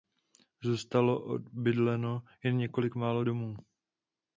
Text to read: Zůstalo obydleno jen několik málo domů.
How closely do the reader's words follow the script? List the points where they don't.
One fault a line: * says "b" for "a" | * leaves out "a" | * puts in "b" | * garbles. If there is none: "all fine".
all fine